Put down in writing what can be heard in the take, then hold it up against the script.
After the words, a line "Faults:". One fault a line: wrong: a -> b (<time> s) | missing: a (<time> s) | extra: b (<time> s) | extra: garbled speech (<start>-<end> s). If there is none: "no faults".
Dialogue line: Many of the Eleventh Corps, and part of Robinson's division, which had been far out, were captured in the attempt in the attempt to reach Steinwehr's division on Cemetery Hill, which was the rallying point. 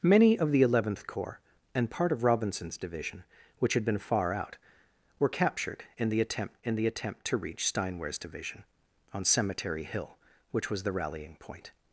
Many of the Eleventh Corps, and part of Robinson's division, which had been far out, were captured in the attempt in the attempt to reach Steinwehr's division on Cemetery Hill, which was the rallying point.
Faults:
no faults